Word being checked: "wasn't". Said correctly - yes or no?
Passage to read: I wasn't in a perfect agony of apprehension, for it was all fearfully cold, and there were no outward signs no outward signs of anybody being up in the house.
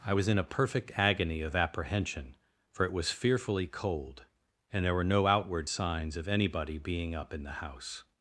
no